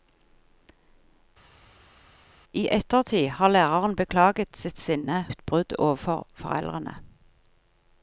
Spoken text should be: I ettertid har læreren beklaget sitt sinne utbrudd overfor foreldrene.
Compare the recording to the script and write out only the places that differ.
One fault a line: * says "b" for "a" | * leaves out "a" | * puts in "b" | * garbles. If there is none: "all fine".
all fine